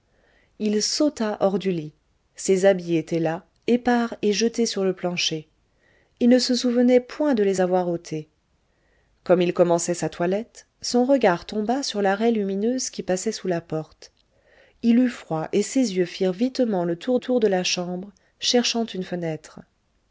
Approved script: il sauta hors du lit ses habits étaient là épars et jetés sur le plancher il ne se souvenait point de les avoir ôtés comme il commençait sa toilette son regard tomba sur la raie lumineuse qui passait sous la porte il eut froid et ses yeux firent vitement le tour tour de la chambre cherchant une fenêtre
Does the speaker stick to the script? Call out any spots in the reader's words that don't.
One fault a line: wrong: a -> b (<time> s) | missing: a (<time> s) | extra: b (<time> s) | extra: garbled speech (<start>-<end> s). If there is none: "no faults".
no faults